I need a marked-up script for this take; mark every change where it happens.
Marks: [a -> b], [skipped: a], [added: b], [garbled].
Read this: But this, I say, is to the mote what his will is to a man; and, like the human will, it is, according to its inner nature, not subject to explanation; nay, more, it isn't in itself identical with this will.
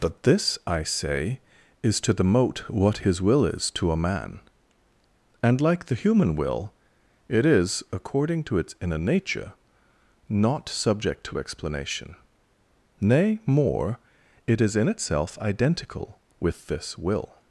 But this, I say, is to the mote what his will is to a man; and, like the human will, it is, according to its inner nature, not subject to explanation; nay, more, it [isn't -> is] in itself identical with this will.